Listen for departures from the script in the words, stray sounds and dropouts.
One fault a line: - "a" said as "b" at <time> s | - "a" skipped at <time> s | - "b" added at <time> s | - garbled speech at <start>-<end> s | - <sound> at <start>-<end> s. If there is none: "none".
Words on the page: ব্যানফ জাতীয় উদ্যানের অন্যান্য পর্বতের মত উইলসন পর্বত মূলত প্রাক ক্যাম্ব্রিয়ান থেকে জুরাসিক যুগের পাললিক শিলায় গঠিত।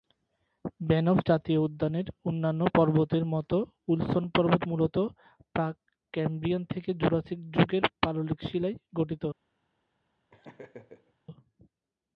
- laugh at 10.3-11.1 s